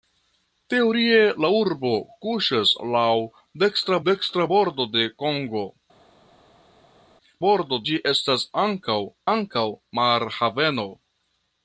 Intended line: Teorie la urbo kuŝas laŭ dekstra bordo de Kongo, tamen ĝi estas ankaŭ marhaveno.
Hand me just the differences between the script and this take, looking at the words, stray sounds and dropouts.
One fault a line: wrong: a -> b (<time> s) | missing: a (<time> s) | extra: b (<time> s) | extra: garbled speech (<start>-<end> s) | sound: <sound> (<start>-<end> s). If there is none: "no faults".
extra: dekstra (4.1 s)
wrong: tamen -> bordo (7.4 s)
extra: ankaŭ (9.3 s)